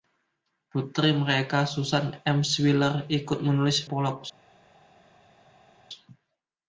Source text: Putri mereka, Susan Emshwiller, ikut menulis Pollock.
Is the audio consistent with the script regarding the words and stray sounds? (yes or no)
yes